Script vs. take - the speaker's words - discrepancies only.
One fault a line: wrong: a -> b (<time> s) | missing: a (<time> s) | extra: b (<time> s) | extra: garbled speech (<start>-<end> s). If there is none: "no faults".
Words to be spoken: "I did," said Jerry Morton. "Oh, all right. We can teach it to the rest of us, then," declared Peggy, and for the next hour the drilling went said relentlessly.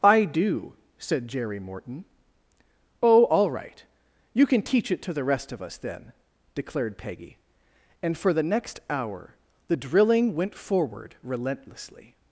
wrong: did -> do (0.2 s)
wrong: We -> You (4.3 s)
wrong: said -> forward (10.5 s)